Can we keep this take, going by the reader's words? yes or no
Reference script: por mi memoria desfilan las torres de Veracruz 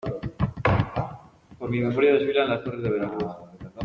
yes